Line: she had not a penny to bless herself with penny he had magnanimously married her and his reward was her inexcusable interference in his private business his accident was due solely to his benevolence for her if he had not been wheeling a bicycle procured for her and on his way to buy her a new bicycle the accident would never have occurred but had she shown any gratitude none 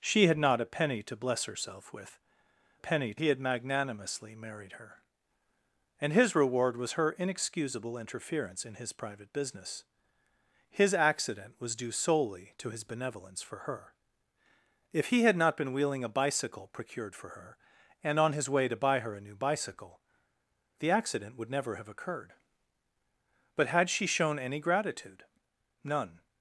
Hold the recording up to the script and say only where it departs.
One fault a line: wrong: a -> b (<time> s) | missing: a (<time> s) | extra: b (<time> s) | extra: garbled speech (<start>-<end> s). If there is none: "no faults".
no faults